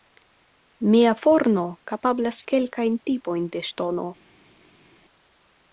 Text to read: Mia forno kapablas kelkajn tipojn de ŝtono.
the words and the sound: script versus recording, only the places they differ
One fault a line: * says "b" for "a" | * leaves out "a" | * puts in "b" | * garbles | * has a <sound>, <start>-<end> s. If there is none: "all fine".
all fine